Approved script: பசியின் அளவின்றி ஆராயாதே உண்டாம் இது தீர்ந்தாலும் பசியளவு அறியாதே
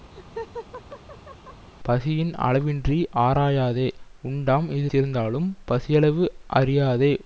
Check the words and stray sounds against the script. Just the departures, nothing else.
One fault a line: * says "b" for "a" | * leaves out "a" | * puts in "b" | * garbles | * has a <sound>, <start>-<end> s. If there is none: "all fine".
* has a laugh, 0.1-1.7 s